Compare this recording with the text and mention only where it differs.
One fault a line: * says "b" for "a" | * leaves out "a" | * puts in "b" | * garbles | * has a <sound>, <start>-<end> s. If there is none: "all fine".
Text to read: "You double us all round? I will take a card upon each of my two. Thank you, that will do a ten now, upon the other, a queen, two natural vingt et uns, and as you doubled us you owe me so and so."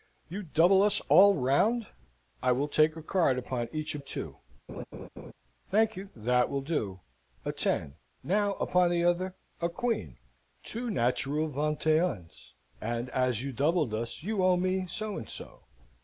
* leaves out "my"
* has a laugh, 4.7-5.3 s